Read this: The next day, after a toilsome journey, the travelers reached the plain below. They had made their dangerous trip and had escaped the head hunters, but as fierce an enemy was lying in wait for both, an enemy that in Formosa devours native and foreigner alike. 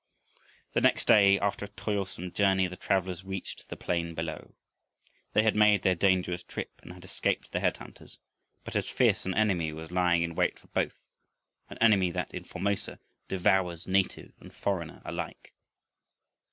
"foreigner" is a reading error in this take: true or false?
false